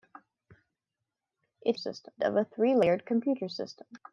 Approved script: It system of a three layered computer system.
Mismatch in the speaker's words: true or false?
false